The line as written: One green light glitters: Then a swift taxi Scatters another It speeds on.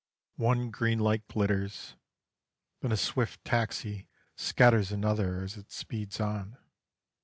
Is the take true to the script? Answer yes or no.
no